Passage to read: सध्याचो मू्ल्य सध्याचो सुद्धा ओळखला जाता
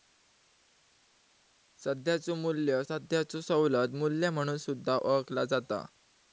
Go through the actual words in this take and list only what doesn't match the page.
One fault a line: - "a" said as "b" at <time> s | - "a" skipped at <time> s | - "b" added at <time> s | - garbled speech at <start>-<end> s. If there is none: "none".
- "सवलत मू्ल्य म्हणून" added at 3.4 s